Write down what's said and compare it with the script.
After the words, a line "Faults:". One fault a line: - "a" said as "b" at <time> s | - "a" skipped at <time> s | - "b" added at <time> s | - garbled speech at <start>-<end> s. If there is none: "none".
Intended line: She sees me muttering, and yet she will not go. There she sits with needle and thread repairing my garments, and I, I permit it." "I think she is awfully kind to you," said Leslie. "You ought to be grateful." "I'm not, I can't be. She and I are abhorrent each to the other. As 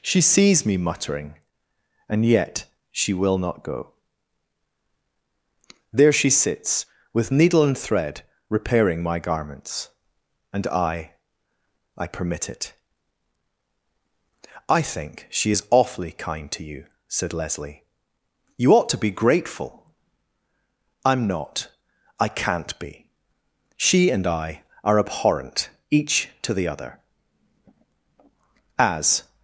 She sees me muttering, and yet she will not go. There she sits with needle and thread repairing my garments, and I, I permit it." "I think she is awfully kind to you," said Leslie. "You ought to be grateful." "I'm not, I can't be. She and I are abhorrent each to the other. As
Faults:
none